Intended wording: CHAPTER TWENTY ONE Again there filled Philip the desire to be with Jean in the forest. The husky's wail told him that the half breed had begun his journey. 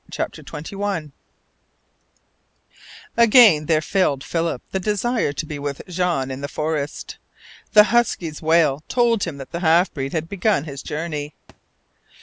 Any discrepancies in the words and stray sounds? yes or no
yes